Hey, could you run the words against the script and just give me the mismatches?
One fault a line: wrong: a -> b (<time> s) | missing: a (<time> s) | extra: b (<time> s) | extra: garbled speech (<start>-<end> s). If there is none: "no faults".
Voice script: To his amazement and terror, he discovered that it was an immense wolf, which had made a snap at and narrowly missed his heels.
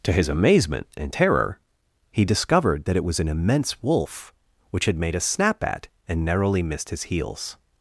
no faults